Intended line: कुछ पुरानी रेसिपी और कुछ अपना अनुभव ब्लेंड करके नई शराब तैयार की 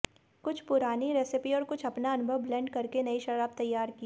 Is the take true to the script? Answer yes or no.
yes